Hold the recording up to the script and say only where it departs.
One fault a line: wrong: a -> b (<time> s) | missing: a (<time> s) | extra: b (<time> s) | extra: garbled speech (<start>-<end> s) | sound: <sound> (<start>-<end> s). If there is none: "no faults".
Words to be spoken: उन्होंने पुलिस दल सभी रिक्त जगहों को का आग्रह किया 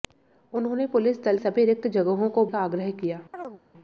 sound: chirp (3.3-3.6 s)